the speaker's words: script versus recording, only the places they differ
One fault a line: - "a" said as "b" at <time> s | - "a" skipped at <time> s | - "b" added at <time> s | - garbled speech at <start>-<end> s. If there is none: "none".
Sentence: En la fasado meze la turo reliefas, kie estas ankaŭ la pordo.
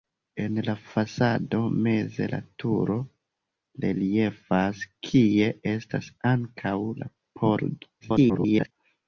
- garbled speech at 8.0-8.7 s